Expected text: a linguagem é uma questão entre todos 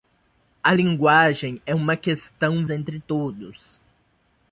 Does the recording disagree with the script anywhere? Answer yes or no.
no